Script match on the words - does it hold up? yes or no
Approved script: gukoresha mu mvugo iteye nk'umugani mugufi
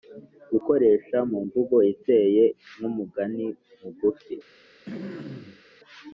yes